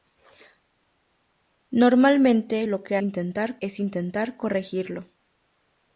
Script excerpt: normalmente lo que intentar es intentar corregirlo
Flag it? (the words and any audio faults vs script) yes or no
no